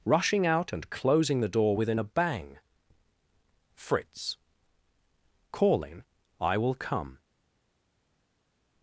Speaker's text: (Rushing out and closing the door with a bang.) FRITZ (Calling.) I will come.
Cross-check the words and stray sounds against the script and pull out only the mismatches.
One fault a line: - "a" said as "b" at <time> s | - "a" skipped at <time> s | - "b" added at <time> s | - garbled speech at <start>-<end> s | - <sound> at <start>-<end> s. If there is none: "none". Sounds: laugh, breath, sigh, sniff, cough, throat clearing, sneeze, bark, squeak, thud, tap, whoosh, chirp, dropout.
- "with" said as "within" at 1.8 s